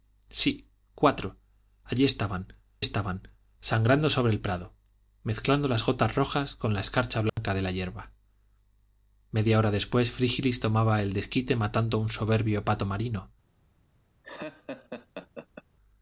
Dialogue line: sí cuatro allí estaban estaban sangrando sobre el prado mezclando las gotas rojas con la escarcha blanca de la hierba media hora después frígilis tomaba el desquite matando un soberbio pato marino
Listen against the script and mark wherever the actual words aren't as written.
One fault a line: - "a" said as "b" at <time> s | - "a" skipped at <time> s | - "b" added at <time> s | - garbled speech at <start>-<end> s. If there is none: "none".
none